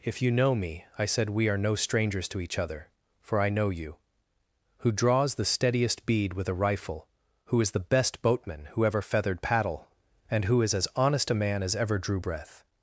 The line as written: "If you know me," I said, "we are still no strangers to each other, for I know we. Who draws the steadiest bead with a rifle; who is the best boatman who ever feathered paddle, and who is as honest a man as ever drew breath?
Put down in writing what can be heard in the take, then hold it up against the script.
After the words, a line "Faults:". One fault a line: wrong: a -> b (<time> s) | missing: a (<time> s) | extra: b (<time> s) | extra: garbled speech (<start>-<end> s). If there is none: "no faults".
"If you know me," I said, "we are no strangers to each other, for I know you. Who draws the steadiest bead with a rifle; who is the best boatman who ever feathered paddle, and who is as honest a man as ever drew breath?
Faults:
missing: still (1.6 s)
wrong: we -> you (3.7 s)